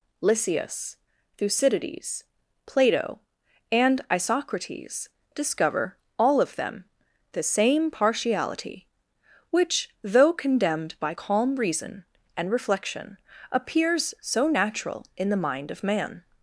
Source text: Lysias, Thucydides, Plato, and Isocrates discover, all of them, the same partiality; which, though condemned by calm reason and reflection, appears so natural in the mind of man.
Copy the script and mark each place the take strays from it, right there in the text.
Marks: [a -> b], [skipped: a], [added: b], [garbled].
Lysias, Thucydides, Plato, and Isocrates discover, all of them, the same partiality; which, though condemned by calm reason and reflection, appears so natural in the mind of man.